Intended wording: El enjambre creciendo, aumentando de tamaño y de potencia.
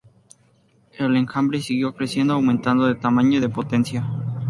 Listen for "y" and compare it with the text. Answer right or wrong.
right